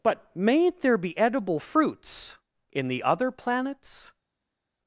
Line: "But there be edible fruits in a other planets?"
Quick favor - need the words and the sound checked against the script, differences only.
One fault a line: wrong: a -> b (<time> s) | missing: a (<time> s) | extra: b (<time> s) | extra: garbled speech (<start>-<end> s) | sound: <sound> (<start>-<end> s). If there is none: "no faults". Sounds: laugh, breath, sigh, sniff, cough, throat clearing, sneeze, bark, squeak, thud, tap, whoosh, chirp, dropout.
extra: mayn't (0.3 s)
wrong: a -> the (2.9 s)